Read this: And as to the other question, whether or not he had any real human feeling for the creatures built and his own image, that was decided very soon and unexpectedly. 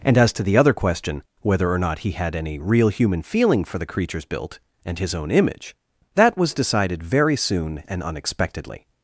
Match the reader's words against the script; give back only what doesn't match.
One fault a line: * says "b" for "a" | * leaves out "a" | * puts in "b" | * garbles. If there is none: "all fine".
all fine